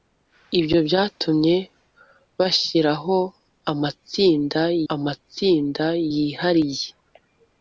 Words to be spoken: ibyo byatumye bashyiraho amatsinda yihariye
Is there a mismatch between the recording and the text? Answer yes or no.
yes